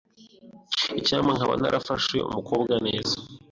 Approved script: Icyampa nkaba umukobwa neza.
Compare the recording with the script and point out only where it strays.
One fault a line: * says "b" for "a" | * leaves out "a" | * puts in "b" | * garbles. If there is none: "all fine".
* puts in "narafashe"